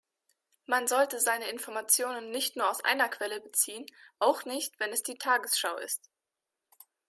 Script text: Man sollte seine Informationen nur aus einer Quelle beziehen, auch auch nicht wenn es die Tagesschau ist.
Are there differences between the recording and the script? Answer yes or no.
yes